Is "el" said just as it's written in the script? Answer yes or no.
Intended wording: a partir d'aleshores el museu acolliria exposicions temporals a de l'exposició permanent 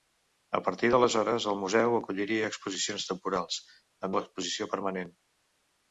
yes